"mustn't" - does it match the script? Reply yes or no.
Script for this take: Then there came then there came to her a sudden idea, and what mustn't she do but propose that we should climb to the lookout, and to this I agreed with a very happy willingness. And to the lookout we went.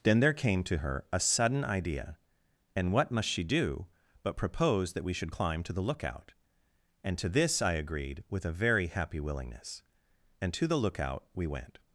no